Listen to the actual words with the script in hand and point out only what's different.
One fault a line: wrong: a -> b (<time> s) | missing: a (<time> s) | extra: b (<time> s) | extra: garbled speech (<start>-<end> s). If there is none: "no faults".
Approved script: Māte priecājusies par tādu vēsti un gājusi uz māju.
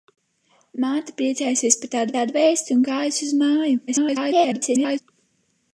extra: tādu (2.2 s)
extra: garbled speech (3.9-5.0 s)